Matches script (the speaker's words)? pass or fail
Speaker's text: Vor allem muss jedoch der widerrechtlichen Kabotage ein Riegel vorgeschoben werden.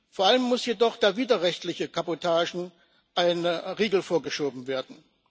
pass